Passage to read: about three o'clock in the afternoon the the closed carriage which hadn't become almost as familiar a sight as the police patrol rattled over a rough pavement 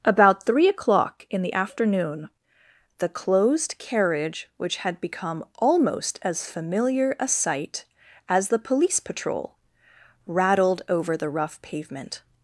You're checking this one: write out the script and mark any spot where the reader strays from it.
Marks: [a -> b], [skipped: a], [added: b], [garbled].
about three o'clock in the afternoon the [skipped: the] closed carriage which [hadn't -> had] become almost as familiar a sight as the police patrol rattled over [a -> the] rough pavement